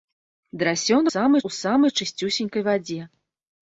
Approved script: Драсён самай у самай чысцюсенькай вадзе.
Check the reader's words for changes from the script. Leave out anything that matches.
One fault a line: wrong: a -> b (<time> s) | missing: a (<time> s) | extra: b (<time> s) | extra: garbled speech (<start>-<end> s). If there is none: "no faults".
no faults